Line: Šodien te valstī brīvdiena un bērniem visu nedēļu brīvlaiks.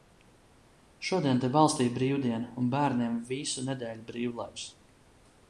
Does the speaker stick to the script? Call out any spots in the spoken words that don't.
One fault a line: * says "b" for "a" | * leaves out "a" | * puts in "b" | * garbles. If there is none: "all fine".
all fine